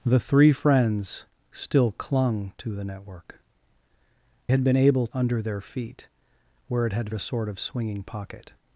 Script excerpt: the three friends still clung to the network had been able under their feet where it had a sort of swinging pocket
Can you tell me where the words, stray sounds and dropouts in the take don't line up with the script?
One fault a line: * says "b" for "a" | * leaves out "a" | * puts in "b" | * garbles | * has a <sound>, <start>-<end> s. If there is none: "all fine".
all fine